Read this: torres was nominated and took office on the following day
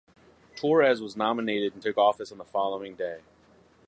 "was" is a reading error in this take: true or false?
false